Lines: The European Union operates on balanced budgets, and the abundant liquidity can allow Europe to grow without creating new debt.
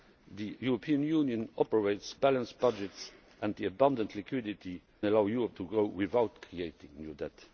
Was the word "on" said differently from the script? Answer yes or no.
yes